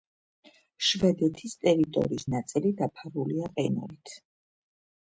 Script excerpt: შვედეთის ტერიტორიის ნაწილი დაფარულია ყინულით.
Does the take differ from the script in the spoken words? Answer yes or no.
no